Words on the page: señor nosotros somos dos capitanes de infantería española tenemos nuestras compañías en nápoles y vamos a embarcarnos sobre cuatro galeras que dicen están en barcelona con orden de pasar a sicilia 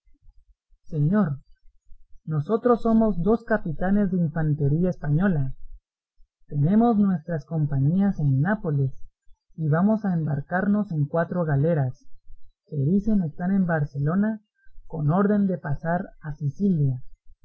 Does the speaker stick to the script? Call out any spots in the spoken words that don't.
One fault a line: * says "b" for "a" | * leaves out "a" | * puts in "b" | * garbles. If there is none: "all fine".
* says "en" for "sobre"